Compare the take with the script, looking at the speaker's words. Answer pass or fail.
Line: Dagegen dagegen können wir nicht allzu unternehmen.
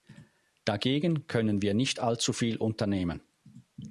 fail